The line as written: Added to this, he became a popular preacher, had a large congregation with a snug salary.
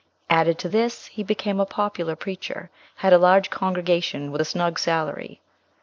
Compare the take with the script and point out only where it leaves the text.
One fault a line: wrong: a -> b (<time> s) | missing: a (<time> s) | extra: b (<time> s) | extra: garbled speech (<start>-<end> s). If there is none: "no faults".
no faults